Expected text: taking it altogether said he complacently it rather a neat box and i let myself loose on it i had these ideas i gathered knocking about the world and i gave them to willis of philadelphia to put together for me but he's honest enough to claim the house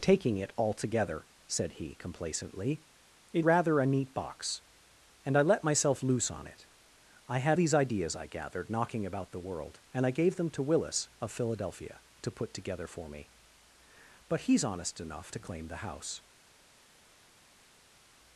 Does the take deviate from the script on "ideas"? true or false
false